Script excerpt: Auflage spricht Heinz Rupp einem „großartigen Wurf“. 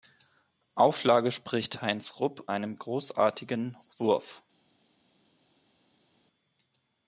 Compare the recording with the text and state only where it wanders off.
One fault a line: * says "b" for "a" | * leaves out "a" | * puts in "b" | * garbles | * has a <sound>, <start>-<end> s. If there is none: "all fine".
all fine